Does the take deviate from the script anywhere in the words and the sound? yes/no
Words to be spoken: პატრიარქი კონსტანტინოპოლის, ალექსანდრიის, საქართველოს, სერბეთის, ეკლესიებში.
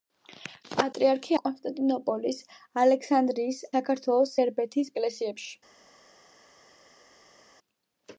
no